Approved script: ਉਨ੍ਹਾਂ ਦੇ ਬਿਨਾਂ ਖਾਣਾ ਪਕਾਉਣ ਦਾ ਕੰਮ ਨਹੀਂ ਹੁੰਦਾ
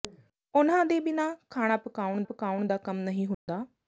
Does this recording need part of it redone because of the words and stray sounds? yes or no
yes